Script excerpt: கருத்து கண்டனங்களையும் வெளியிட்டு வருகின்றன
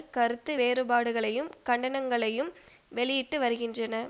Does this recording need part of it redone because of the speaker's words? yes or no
yes